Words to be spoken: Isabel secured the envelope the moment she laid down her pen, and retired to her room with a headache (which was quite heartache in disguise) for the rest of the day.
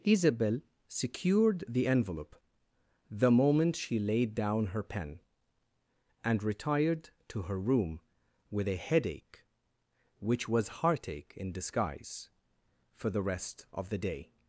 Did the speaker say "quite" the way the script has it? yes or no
no